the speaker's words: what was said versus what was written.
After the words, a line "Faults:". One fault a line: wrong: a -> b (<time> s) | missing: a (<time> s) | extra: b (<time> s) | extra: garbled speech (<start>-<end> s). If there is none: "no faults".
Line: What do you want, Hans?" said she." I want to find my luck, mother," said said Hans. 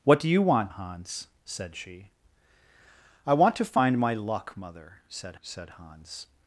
What do you want, Hans?" said she." I want to find my luck, mother," said said Hans.
Faults:
no faults